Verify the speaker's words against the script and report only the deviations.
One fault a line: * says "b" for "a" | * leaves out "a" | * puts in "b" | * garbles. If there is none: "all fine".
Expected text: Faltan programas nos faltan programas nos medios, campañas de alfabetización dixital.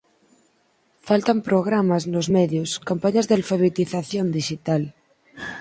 * leaves out "faltan programas nos"